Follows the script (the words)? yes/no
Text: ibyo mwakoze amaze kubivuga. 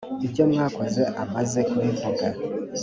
yes